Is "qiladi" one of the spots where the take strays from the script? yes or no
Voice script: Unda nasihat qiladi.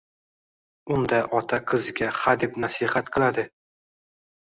no